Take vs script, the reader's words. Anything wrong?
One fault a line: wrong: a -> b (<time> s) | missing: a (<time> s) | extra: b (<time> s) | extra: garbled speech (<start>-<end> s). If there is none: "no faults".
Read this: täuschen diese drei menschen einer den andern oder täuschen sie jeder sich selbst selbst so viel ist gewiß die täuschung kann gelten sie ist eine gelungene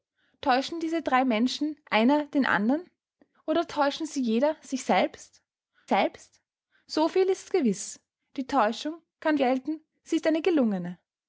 no faults